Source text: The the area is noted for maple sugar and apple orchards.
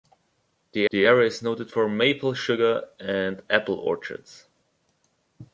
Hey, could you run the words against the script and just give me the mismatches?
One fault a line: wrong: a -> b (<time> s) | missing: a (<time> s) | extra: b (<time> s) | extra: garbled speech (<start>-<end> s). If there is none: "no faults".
no faults